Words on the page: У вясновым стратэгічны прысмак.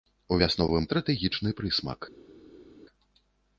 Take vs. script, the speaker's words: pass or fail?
pass